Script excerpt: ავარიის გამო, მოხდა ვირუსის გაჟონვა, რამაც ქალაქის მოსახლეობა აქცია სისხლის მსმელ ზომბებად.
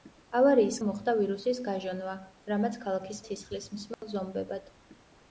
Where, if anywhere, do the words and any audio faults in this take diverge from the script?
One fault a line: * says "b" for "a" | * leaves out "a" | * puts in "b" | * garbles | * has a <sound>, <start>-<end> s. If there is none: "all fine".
* leaves out "გამო"
* leaves out "მოსახლეობა აქცია"
* has a dropout, 3.9-4.0 s